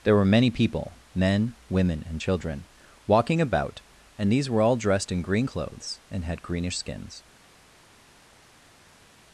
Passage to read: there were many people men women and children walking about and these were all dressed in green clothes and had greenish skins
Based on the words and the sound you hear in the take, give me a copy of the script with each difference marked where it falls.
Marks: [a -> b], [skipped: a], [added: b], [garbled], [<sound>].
there were many people men women and children walking about and these were all dressed in green clothes and had greenish skins